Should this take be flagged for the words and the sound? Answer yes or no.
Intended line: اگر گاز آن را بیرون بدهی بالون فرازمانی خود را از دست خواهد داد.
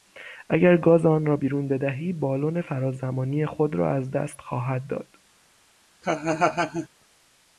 yes